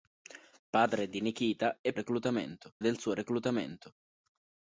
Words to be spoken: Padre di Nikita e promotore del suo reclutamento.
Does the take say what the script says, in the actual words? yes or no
no